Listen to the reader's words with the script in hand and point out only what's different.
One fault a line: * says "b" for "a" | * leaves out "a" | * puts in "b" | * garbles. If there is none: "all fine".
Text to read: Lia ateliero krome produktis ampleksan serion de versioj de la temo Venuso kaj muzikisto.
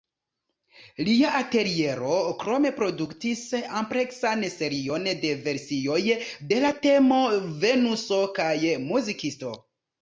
all fine